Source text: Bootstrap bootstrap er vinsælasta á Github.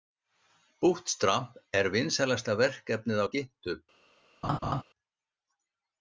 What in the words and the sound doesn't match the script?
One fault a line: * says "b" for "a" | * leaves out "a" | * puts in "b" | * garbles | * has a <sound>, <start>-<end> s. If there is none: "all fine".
* leaves out "bootstrap"
* puts in "verkefnið"
* has a laugh, 4.4-4.8 s